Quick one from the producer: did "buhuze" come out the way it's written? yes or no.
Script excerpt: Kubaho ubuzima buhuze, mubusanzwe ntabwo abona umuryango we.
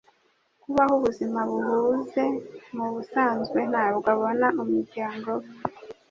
yes